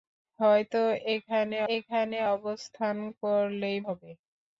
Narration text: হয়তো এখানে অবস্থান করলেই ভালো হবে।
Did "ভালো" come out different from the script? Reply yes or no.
yes